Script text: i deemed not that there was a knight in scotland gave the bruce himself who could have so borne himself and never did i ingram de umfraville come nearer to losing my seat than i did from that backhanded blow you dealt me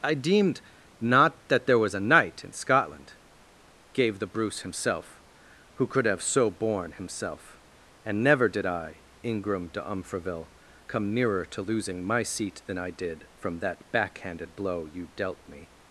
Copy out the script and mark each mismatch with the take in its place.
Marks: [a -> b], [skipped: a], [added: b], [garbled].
i deemed not that there was a knight in scotland gave the bruce himself who could have so borne himself and never did i ingram de umfraville come nearer to losing my seat than i did from that backhanded blow you dealt me